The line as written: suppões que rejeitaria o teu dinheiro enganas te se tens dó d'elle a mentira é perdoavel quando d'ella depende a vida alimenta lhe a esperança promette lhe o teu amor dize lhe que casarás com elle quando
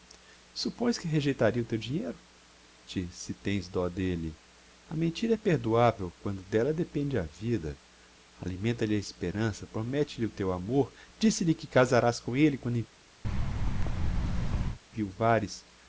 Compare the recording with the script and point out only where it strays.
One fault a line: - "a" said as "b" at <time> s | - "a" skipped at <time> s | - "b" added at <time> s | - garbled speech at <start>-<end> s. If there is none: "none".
- "enganas" skipped at 2.2 s